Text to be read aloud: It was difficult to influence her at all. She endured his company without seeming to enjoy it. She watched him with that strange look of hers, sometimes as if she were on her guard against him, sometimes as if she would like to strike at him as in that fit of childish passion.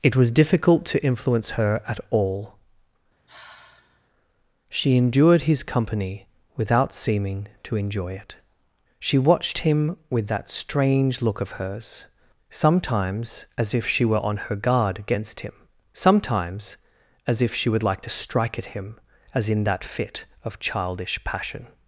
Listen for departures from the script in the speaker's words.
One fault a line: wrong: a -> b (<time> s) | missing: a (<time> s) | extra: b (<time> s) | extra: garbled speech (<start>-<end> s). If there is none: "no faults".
no faults